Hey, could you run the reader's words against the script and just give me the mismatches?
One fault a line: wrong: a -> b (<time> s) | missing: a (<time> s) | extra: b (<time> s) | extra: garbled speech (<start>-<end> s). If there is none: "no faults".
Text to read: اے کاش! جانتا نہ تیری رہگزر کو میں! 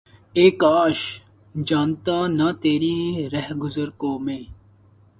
no faults